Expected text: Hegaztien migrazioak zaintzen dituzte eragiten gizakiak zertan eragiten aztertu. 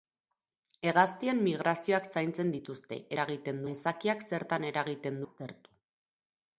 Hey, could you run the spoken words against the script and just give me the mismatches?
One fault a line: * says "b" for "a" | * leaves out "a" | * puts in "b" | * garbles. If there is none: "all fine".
all fine